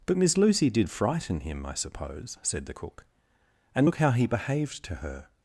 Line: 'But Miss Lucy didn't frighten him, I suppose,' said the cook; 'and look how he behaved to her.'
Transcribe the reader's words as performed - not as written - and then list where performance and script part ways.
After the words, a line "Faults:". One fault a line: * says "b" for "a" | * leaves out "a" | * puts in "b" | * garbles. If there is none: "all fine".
'But Miss Lucy did frighten him, I suppose,' said the cook; 'and look how he behaved to her.'
Faults:
* says "did" for "didn't"